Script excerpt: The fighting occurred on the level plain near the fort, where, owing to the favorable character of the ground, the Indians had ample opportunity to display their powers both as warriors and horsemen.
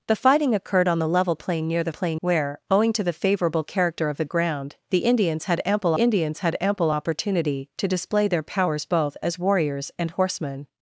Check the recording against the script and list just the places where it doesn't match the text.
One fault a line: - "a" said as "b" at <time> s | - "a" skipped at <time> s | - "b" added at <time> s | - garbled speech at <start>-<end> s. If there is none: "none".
- "fort" said as "plain" at 1.9 s
- "Indians had ample" added at 6.0 s